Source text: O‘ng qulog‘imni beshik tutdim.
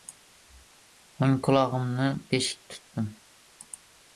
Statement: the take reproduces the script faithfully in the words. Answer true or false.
true